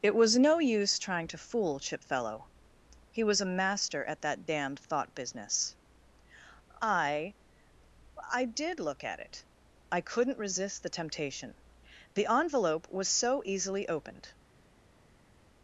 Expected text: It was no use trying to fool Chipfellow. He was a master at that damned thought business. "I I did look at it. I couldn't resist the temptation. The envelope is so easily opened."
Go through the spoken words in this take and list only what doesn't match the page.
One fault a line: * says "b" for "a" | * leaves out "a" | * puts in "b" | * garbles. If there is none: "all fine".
* says "was" for "is"